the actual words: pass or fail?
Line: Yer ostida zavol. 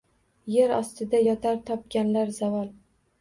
fail